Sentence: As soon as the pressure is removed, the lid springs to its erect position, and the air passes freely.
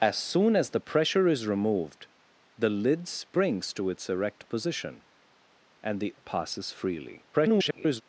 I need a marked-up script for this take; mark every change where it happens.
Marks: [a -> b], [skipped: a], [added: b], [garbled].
As soon as the pressure is removed, the lid springs to its erect position, and the [skipped: air] passes freely. [garbled]